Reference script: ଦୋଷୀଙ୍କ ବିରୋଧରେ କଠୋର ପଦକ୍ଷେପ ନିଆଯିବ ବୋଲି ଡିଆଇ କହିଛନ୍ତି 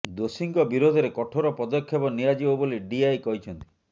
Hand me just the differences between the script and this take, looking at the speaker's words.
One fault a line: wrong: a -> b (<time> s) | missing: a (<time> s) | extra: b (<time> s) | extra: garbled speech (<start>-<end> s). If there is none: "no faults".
no faults